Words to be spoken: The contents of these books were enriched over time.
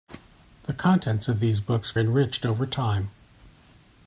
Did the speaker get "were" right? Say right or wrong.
wrong